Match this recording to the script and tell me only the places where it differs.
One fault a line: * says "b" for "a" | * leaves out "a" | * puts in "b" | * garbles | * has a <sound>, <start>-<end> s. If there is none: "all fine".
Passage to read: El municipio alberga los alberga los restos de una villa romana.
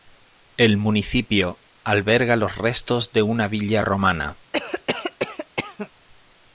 * leaves out "alberga los"
* has a cough, 4.5-5.9 s